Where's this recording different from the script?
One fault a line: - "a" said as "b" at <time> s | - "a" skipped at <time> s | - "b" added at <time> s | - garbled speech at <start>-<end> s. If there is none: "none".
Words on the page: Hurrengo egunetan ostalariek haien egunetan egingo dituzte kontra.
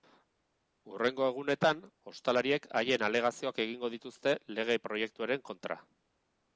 - "egunetan" said as "alegazioak" at 3.1 s
- "lege proiektuaren" added at 4.6 s